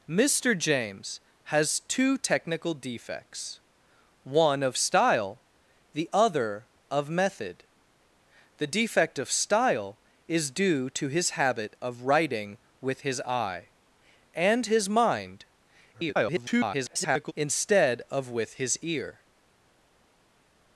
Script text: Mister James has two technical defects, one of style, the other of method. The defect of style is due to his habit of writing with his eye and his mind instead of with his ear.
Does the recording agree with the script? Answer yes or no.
no